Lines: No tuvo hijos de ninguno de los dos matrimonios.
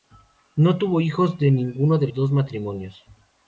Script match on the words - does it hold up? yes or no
no